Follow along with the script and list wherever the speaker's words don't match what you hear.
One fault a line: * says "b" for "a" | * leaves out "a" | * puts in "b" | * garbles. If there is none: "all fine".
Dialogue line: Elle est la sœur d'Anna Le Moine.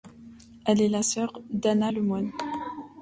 all fine